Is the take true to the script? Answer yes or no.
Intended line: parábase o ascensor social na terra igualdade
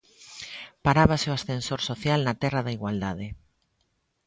no